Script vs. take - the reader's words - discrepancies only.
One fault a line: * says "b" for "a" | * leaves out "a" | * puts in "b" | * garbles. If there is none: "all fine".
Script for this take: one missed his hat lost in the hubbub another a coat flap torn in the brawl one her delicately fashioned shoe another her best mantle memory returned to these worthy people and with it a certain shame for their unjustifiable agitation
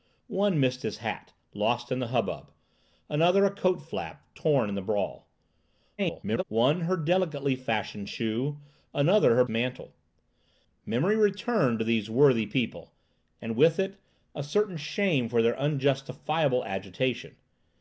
* garbles
* leaves out "best"